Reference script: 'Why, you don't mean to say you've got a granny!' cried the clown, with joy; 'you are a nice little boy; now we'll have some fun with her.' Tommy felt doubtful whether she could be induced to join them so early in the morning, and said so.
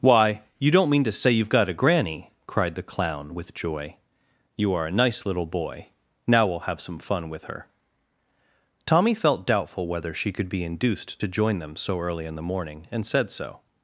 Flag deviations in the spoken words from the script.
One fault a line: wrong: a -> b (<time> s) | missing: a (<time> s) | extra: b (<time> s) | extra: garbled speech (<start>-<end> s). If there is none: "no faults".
no faults